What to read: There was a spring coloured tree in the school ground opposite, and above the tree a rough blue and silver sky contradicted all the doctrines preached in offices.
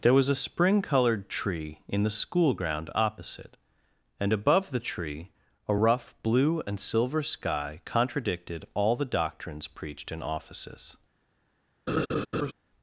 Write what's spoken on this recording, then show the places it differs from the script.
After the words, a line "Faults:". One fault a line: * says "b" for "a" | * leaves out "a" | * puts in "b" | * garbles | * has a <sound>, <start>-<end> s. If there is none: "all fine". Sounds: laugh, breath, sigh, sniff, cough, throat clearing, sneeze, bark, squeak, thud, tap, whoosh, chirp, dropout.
There was a spring coloured tree in the school ground opposite, and above the tree a rough blue and silver sky contradicted all the doctrines preached in offices.
Faults:
* has a laugh, 11.9-12.5 s